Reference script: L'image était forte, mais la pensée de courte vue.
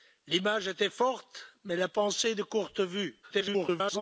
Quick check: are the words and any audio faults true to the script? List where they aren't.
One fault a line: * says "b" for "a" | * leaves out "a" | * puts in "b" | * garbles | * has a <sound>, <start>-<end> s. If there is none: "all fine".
* garbles